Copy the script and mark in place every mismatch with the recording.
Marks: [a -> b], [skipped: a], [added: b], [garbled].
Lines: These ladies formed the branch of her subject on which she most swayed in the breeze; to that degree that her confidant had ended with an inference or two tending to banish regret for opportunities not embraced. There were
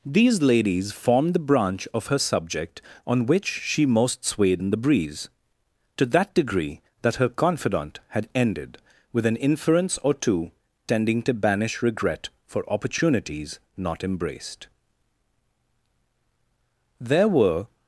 These ladies formed the branch of her subject on which she most swayed in the breeze; to that degree that her confidant had ended with an inference or two tending to banish regret for opportunities not embraced. There were